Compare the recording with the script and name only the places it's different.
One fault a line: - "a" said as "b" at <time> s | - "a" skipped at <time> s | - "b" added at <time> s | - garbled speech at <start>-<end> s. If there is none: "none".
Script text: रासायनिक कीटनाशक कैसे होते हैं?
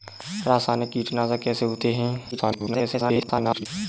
- garbled speech at 2.3-3.7 s